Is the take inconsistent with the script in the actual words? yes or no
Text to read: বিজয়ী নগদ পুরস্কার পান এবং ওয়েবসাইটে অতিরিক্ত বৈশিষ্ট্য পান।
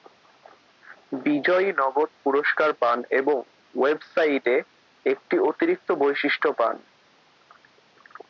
yes